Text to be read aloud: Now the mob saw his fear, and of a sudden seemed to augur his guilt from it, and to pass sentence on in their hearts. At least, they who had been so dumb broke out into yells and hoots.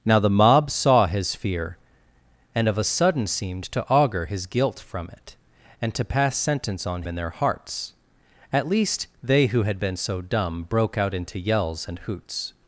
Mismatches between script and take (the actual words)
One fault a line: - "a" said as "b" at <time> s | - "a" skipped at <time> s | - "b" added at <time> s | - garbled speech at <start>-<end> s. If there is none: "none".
none